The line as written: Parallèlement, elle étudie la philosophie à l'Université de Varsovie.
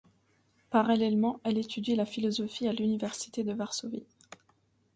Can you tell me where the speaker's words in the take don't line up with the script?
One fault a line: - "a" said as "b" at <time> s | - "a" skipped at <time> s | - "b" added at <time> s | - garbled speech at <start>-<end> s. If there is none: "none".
none